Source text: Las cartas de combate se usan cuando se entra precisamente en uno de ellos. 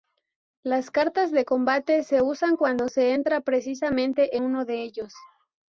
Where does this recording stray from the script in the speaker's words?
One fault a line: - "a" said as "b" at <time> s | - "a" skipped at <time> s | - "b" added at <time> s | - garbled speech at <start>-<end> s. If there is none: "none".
- "en" skipped at 4.4 s